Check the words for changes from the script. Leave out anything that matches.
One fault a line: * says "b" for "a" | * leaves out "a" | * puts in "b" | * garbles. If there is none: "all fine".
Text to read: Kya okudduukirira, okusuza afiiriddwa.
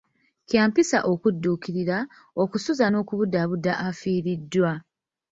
* puts in "mpisa"
* puts in "n'okubudaabuda"